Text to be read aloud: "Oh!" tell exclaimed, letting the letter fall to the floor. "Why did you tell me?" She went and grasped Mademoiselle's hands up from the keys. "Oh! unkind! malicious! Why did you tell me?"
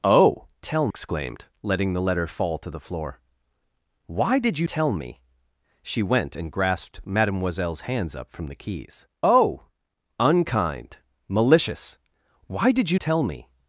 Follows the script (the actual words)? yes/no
yes